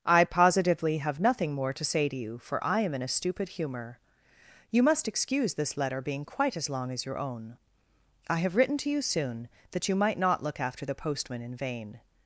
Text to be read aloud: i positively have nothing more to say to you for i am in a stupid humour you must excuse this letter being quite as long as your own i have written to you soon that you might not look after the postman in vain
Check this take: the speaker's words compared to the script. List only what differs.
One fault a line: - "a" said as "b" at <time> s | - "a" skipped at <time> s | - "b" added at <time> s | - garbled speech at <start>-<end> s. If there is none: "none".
none